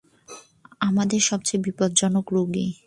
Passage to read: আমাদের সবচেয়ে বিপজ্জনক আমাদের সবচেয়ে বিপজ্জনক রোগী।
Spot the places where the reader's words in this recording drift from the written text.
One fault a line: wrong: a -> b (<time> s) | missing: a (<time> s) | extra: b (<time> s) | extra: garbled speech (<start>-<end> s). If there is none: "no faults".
missing: আমাদের সবচেয়ে বিপজ্জনক (2.2 s)